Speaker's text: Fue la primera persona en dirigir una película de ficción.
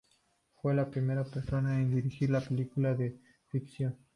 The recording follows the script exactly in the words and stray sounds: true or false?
true